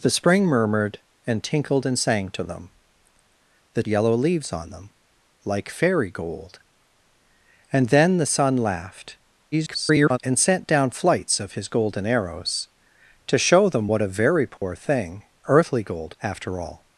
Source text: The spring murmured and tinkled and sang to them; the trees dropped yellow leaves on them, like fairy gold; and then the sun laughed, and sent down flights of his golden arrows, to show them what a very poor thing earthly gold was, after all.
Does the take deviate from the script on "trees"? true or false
true